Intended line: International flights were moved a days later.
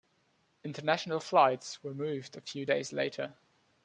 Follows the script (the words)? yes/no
no